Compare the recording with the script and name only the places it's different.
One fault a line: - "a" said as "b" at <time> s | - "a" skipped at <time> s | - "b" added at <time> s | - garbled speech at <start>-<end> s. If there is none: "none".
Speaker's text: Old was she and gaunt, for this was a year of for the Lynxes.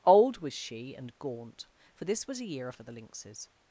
none